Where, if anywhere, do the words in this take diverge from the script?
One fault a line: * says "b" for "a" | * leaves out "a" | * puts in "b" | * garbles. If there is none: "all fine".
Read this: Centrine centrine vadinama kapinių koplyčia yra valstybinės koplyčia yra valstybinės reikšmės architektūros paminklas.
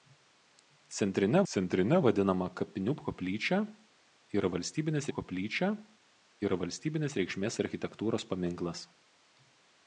all fine